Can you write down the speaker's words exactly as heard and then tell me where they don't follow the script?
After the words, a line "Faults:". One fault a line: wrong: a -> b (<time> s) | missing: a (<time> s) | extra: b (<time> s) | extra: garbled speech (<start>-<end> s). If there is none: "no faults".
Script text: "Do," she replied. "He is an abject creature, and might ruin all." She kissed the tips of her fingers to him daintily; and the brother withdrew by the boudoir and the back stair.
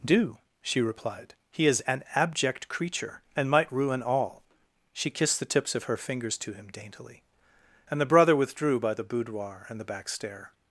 "Do," she replied. "He is an abject creature, and might ruin all." She kissed the tips of her fingers to him daintily; and the brother withdrew by the boudoir and the back stair.
Faults:
no faults